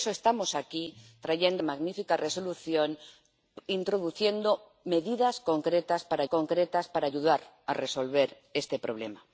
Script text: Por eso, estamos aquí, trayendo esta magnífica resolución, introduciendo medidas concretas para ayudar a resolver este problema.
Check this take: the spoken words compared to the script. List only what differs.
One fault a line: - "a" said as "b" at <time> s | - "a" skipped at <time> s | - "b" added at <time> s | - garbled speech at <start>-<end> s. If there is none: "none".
- "esta" skipped at 1.6 s
- "concretas para" added at 6.2 s